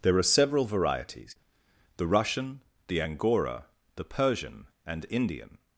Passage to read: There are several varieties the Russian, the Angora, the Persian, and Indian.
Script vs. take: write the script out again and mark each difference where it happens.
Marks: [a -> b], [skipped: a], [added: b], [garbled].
There are several varieties the Russian, the Angora, the Persian, and Indian.